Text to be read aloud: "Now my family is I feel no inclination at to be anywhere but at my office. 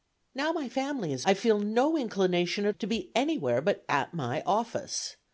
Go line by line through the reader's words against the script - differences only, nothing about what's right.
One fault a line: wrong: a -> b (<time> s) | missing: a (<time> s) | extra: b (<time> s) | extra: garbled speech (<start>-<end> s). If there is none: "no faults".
no faults